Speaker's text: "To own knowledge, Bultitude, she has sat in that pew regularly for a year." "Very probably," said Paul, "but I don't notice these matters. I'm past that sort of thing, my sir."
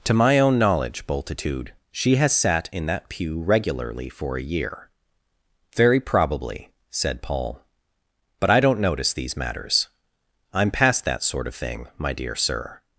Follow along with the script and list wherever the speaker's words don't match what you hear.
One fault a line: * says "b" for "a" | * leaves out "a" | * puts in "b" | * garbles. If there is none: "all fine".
* puts in "my"
* puts in "dear"